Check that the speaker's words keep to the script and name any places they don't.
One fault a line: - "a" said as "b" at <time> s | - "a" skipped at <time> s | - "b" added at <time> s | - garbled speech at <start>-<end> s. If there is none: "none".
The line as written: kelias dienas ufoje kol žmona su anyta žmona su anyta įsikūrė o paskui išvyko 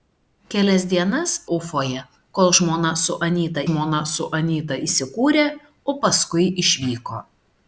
none